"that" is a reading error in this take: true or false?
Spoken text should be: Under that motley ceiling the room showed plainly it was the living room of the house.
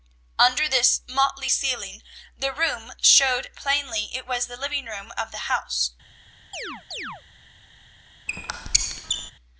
true